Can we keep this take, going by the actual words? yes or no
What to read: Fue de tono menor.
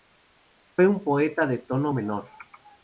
no